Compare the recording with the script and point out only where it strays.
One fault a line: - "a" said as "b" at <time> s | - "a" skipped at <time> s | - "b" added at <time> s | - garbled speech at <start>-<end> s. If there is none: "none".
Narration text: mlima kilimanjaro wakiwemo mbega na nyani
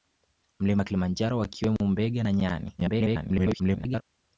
- garbled speech at 2.8-4.0 s